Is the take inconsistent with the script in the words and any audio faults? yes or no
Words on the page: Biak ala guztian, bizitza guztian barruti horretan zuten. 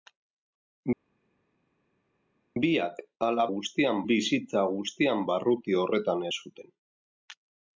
no